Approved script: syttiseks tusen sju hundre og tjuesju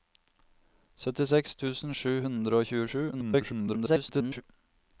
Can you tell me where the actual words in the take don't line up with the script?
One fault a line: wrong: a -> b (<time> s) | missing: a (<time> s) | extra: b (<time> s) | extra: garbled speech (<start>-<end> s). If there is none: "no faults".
extra: garbled speech (3.1-4.4 s)